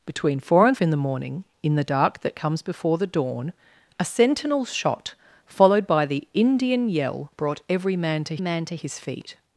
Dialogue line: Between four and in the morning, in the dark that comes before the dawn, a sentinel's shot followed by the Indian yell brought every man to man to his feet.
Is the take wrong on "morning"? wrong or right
right